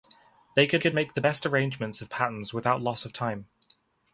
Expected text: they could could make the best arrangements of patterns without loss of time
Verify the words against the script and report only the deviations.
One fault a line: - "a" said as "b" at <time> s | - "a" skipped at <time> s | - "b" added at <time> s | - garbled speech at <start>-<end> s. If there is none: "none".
none